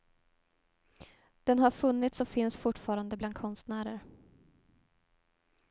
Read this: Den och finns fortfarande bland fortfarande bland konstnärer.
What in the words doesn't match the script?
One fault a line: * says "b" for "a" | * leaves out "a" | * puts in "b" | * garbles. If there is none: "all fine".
* puts in "har funnits"
* leaves out "fortfarande bland"